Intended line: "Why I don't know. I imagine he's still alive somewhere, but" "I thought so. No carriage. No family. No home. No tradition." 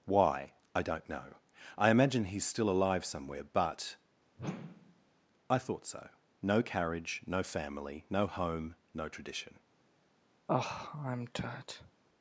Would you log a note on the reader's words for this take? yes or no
no